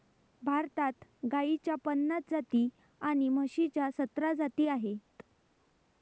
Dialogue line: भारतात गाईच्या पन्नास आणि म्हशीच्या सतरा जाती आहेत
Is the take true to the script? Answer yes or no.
no